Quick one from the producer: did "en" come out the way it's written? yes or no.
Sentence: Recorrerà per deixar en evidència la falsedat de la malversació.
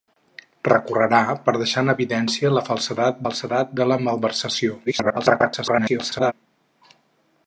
yes